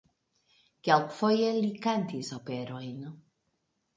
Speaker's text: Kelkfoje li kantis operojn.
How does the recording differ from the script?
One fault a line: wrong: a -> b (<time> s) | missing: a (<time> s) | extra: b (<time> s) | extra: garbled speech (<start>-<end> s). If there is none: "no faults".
no faults